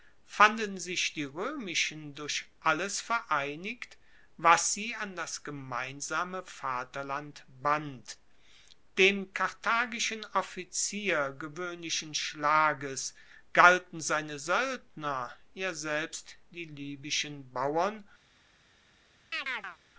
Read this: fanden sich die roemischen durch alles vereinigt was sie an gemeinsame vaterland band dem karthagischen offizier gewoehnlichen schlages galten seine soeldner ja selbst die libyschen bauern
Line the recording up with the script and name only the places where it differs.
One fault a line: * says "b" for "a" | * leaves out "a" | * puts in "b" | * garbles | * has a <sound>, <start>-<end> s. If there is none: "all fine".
* puts in "das"
* has a chirp, 19.3-19.8 s